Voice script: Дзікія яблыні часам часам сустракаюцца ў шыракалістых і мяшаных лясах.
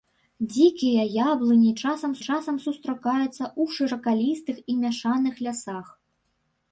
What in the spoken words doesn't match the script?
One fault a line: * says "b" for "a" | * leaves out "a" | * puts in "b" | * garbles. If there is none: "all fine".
all fine